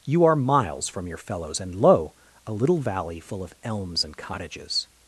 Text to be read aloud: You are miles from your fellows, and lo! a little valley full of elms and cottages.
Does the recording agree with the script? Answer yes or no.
yes